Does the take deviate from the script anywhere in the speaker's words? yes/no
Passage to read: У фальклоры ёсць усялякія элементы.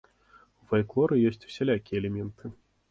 no